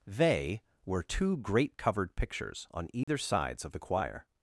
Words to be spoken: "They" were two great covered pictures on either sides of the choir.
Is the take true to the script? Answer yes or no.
yes